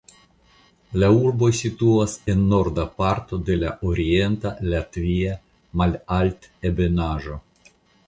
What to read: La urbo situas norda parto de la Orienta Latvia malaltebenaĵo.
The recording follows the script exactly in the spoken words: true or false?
false